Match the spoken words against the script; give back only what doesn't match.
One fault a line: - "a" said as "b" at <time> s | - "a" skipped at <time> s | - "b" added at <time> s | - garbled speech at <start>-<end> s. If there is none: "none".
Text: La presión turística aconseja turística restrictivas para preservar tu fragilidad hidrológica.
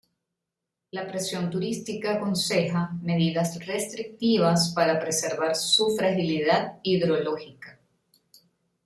- "turística" said as "medidas" at 3.0 s
- "tu" said as "su" at 5.5 s